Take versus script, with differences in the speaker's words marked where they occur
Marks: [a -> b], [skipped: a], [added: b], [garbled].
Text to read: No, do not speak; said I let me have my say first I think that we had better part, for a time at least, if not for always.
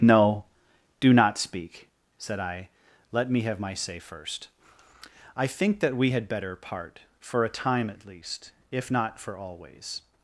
No, do not speak; said I let me have my say first I think that we had better part, for a time at least, if not for always.